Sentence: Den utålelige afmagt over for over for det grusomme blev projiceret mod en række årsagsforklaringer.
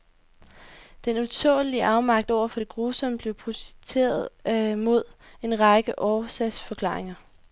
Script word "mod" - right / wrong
right